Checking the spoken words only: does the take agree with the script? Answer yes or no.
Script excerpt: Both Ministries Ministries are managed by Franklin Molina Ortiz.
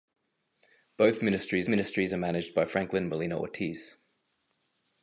yes